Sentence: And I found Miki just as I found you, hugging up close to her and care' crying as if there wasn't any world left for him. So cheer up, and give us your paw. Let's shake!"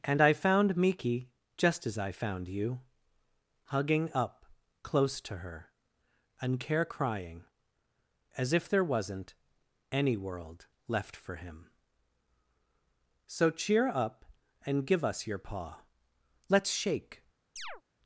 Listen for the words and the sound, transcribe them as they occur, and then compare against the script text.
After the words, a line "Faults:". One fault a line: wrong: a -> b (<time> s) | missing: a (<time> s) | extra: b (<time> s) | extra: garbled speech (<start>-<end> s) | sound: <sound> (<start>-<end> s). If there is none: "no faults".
And I found Miki just as I found you, hugging up close to her and care' crying as if there wasn't any world left for him. So cheer up, and give us your paw. Let's shake!"
Faults:
sound: chirp (17.6-17.8 s)